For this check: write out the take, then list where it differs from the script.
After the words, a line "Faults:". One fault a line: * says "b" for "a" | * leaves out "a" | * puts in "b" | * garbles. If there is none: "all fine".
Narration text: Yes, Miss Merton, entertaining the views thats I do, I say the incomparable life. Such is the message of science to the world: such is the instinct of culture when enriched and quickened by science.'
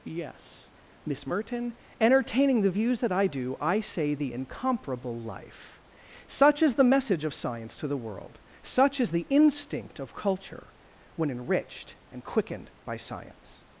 Yes, Miss Merton, entertaining the views that I do, I say the incomparable life. Such is the message of science to the world: such is the instinct of culture when enriched and quickened by science.'
Faults:
* says "that" for "thats"